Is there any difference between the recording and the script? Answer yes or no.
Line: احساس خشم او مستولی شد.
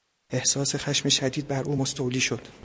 yes